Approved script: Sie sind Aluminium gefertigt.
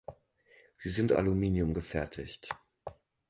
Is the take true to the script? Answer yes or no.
yes